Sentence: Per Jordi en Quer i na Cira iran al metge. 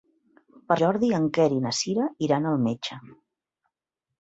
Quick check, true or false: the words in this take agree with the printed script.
true